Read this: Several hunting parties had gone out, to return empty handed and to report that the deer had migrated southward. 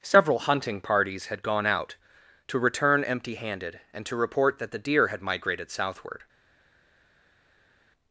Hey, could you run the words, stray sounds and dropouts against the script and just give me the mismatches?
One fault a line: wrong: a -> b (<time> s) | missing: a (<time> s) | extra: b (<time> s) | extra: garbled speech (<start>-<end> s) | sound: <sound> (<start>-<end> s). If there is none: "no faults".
no faults